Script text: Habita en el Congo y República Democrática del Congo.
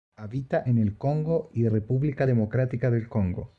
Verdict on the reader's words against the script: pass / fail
pass